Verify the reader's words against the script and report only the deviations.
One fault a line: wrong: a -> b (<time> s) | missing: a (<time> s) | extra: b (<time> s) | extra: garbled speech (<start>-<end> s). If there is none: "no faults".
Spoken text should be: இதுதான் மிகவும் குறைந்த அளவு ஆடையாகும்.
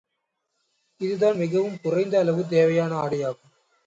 extra: தேவையான (2.5 s)